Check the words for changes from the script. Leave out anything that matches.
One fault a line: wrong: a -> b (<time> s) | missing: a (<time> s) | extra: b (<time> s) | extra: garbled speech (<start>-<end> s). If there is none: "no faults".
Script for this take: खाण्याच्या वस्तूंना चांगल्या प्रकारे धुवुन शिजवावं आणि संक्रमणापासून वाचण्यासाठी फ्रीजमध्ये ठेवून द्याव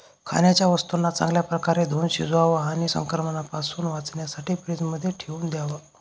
no faults